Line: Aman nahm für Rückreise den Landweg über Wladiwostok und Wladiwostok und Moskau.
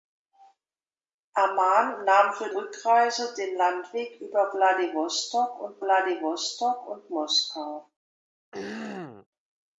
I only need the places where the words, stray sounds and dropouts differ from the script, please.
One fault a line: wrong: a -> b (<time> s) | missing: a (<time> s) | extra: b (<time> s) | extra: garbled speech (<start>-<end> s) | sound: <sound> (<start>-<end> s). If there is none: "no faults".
sound: throat clearing (8.5-9.3 s)